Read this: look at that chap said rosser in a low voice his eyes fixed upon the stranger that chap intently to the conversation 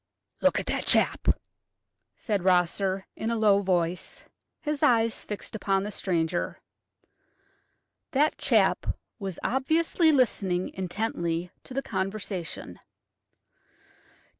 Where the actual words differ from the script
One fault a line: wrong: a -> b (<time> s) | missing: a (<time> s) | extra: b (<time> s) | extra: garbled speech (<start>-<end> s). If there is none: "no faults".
extra: was obviously listening (9.2 s)